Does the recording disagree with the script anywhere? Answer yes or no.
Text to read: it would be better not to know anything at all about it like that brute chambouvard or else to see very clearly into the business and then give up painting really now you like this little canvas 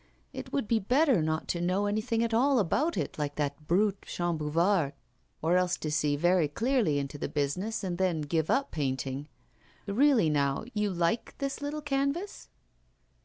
no